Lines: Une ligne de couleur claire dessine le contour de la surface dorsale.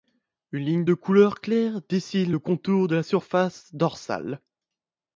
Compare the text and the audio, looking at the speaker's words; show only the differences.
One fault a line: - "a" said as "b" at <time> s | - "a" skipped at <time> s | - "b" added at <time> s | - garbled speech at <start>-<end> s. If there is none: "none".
none